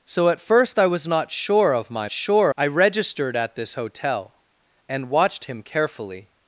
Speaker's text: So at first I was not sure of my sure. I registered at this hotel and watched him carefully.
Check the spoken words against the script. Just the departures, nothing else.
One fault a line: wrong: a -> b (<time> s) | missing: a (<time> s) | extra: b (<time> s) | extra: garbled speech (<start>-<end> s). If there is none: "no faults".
no faults